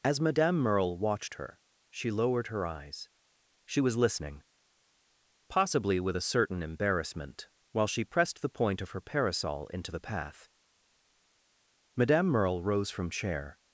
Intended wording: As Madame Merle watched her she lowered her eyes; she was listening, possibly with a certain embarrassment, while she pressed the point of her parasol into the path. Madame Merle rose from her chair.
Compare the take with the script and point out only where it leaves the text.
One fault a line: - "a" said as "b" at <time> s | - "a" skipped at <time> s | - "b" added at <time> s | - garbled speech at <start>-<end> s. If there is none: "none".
- "her" skipped at 13.1 s